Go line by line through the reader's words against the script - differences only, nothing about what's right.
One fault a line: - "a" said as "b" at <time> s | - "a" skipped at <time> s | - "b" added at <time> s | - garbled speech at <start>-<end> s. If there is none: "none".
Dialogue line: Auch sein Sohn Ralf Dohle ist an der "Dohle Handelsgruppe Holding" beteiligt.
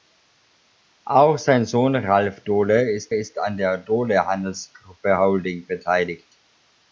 - "ist" added at 3.1 s